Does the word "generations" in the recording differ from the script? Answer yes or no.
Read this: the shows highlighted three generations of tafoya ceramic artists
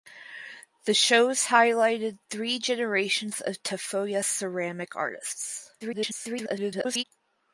no